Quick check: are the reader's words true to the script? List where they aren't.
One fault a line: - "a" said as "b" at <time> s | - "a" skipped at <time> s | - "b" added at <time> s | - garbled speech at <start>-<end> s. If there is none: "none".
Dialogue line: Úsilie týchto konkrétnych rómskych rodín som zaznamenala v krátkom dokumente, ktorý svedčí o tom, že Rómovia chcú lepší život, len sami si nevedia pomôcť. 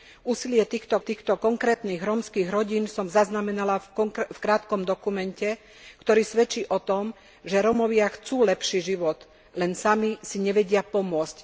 - "týchto" added at 1.0 s